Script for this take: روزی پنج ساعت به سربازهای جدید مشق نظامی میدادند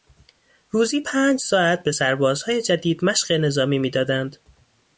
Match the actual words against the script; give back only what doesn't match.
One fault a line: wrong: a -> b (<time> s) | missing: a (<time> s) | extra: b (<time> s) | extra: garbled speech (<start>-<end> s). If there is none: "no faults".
no faults